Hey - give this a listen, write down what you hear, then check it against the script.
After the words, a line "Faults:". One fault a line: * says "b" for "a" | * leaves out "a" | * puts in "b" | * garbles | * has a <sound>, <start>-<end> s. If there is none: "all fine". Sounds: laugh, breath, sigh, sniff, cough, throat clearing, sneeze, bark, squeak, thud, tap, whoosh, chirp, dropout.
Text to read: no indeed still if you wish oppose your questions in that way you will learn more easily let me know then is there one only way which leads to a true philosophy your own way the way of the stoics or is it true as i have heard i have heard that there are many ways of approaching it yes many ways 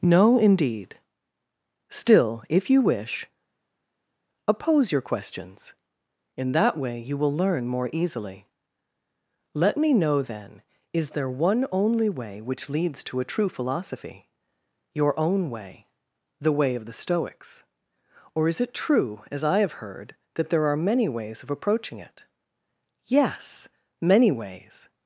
no indeed still if you wish oppose your questions in that way you will learn more easily let me know then is there one only way which leads to a true philosophy your own way the way of the stoics or is it true as i have heard that there are many ways of approaching it yes many ways
Faults:
* leaves out "i have heard"